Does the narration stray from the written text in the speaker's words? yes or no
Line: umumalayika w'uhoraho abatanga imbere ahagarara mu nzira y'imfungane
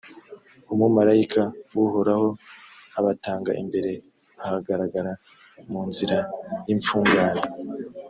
no